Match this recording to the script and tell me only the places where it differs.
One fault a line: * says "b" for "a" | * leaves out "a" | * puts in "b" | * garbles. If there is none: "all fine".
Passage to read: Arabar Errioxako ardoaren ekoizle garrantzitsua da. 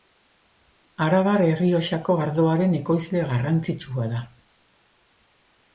all fine